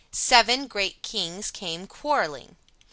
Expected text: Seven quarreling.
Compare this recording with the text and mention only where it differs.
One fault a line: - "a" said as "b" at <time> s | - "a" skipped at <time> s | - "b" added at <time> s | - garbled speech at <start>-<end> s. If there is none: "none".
- "great kings came" added at 0.7 s